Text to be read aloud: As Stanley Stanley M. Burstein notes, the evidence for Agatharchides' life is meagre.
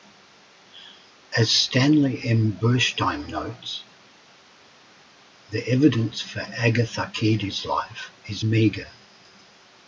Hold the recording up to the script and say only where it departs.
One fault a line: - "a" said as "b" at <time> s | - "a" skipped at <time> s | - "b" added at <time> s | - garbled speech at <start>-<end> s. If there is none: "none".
- "Stanley" skipped at 2.2 s